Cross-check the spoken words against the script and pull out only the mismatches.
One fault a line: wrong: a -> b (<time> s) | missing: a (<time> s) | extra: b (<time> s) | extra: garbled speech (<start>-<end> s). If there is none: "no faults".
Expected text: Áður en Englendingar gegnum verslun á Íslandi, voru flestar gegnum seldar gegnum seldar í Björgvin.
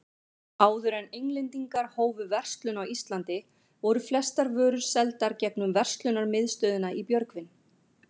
wrong: gegnum -> hófu (2.0 s)
wrong: gegnum -> vörur (4.6 s)
wrong: seldar -> verslunarmiðstöðina (5.8 s)